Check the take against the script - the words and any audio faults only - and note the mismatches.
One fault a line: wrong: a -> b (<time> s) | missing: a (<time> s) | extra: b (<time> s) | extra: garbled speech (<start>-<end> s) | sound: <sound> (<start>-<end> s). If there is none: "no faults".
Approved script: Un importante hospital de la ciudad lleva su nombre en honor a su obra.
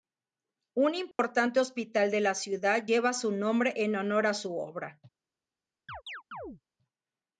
sound: dropout (1.1-1.2 s)
sound: chirp (5.9-6.6 s)